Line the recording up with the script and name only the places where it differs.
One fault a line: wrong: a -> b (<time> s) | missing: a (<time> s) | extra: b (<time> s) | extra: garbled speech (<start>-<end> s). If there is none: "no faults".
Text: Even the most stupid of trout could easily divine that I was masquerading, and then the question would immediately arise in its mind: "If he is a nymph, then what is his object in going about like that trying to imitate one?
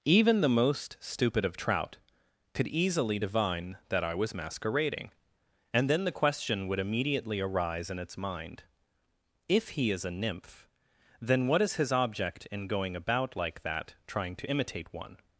no faults